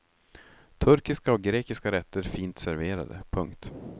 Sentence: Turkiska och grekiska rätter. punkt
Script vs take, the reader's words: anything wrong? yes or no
yes